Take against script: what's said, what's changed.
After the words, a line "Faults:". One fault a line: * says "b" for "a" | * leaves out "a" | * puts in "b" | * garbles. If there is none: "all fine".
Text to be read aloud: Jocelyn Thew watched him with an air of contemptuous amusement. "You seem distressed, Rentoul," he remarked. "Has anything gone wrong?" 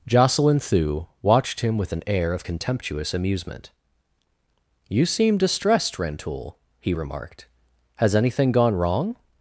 Jocelyn Thew watched him with an air of contemptuous amusement. "You seem distressed, Rentoul," he remarked. "Has anything gone wrong?"
Faults:
all fine